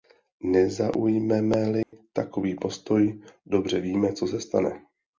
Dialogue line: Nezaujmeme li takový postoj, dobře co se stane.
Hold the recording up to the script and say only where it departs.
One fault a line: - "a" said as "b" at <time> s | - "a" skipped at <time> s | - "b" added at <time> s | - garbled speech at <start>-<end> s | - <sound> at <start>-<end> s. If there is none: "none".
- dropout at 1.8-1.9 s
- "víme" added at 3.8 s